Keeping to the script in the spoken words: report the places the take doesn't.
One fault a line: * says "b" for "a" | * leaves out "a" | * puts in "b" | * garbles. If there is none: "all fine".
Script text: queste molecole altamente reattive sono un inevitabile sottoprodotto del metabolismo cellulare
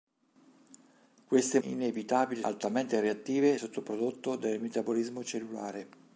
* says "inevitabile" for "molecole"
* leaves out "sono un inevitabile"